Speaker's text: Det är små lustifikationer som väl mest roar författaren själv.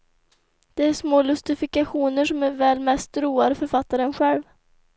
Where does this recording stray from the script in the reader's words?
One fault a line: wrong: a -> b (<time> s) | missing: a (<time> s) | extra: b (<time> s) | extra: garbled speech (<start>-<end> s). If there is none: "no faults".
no faults